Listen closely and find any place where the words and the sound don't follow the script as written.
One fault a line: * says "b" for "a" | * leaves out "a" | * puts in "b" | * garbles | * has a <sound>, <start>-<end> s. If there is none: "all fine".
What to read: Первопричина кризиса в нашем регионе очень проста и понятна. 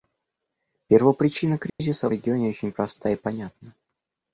* has a dropout, 1.7-1.8 s
* leaves out "нашем"